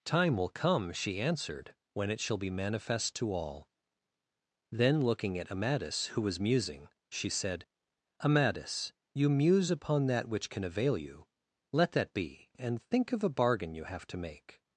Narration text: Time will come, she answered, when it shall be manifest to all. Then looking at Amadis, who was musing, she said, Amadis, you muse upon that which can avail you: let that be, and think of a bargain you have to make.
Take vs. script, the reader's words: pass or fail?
pass